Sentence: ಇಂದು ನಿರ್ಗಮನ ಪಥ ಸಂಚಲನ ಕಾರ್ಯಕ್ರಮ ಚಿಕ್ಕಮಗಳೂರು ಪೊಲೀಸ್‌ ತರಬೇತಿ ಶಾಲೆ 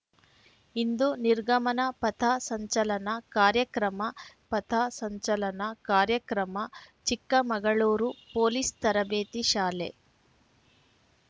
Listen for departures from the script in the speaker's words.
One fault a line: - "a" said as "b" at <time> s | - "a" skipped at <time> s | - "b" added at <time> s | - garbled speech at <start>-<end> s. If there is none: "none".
- "ಪಥ ಸಂಚಲನ ಕಾರ್ಯಕ್ರಮ" added at 4.5 s